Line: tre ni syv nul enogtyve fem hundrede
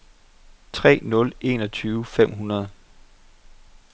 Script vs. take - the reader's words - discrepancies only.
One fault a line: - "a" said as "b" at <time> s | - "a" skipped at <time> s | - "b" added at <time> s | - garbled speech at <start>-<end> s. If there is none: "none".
- "ni syv" skipped at 1.0 s